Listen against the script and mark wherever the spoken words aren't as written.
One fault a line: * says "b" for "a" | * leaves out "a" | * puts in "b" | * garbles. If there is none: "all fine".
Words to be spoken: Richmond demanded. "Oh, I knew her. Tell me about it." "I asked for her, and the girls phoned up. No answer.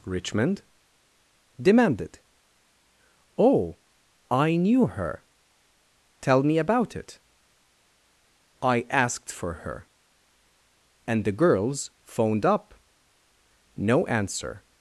all fine